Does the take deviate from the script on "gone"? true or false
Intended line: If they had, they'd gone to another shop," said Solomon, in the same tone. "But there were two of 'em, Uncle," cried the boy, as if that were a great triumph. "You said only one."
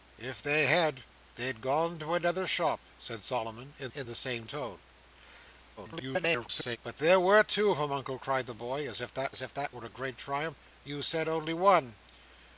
false